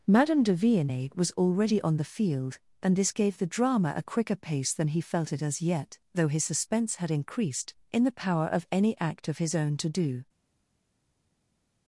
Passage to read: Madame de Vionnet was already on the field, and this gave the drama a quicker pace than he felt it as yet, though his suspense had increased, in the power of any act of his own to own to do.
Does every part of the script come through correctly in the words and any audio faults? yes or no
no